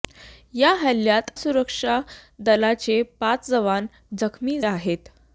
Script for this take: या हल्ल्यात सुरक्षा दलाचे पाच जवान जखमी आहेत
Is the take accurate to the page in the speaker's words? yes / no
yes